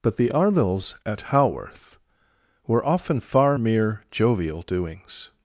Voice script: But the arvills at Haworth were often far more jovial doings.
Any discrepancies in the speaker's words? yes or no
yes